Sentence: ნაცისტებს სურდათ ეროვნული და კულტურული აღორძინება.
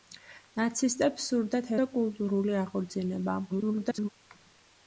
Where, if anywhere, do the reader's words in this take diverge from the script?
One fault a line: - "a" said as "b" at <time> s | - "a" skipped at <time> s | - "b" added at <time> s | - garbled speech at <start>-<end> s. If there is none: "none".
- "ეროვნული" skipped at 1.7 s
- garbled speech at 3.5-4.1 s